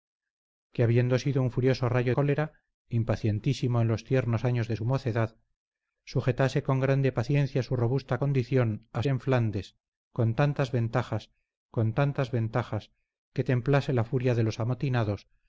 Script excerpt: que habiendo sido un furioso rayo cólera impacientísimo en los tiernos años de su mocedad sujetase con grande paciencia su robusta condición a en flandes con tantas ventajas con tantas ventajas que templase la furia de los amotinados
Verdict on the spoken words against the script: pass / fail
pass